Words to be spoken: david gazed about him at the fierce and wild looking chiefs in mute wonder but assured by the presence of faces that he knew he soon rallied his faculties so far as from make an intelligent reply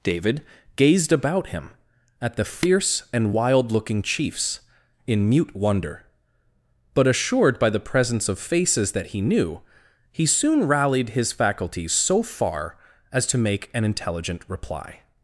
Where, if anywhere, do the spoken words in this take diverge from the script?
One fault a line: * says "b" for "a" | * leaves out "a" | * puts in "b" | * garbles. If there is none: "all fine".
* says "to" for "from"